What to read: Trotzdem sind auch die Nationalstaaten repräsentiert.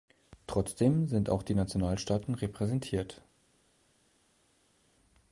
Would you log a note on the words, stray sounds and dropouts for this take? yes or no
no